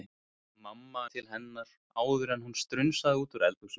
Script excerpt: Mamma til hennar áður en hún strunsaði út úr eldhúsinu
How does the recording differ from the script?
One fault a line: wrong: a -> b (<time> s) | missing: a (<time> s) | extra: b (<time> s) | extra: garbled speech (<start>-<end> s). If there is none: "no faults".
no faults